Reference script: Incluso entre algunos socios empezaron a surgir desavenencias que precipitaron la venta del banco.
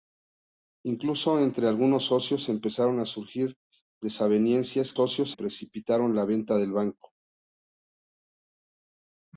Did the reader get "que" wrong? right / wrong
wrong